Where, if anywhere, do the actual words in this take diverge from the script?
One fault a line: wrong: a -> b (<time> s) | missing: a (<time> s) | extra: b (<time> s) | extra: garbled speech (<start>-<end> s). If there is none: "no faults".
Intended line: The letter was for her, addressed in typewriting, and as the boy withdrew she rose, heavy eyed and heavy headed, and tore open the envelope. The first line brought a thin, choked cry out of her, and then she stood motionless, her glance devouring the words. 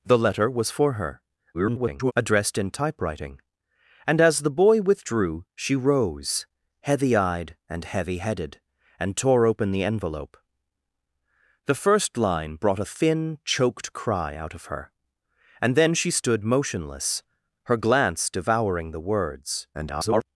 extra: garbled speech (1.5-2.1 s)
extra: garbled speech (19.7-20.3 s)